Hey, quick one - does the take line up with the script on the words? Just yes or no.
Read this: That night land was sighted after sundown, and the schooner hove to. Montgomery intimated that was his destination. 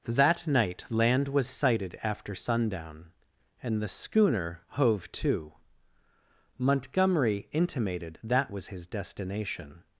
yes